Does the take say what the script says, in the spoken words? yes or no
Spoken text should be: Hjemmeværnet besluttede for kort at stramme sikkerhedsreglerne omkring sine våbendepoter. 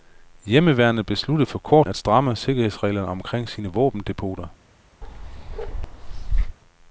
yes